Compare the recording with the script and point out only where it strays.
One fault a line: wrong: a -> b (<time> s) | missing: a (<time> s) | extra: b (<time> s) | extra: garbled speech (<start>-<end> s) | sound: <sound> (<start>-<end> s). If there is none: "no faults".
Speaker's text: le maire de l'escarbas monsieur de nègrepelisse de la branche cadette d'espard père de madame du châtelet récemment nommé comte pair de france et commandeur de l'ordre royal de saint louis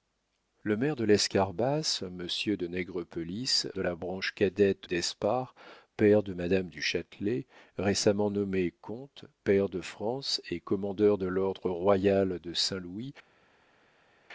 no faults